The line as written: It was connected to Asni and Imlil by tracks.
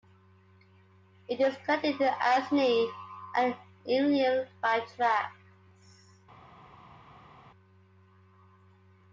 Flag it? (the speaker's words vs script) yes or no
yes